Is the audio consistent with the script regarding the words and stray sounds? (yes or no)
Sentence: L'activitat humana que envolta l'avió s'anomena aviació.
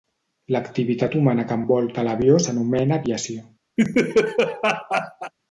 no